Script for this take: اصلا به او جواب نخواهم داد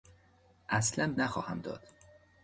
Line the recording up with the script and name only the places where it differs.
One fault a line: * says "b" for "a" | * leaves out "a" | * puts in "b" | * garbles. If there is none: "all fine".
* leaves out "به او جواب"